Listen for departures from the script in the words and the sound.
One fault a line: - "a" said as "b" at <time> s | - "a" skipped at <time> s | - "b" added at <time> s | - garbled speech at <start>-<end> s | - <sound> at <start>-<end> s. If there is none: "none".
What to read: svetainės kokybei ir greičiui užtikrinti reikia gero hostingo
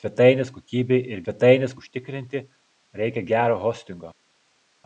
- "greičiui" said as "svetainės" at 1.2 s